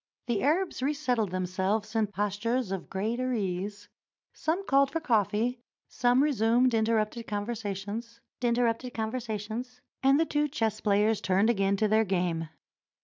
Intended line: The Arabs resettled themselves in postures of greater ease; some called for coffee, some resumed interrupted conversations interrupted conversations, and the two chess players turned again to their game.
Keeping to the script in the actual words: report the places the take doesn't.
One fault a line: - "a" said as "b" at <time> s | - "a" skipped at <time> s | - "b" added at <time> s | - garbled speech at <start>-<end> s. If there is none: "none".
none